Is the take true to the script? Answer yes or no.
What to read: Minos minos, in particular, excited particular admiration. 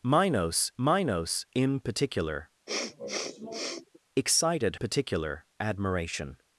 yes